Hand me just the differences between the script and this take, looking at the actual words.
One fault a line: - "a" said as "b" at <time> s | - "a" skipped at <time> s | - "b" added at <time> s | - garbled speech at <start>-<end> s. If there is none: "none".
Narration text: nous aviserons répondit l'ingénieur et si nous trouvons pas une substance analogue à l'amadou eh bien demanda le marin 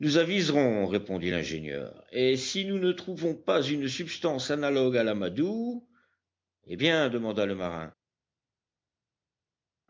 - "ne" added at 2.8 s